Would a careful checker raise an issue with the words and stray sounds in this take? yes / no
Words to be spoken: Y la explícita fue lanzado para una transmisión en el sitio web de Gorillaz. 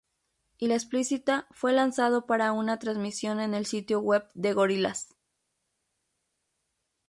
no